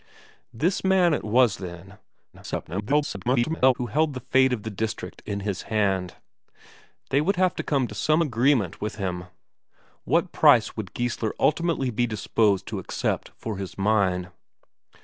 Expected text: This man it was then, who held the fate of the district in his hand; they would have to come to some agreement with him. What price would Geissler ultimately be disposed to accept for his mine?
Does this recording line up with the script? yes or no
no